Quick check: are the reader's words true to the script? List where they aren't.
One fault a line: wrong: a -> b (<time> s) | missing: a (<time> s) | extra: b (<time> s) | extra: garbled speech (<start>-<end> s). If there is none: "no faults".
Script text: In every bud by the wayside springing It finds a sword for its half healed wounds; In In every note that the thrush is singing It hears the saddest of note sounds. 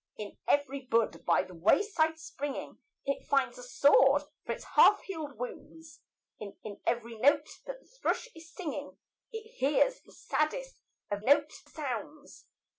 no faults